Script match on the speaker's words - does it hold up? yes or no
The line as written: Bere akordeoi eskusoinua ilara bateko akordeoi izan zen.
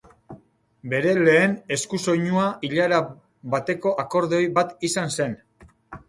no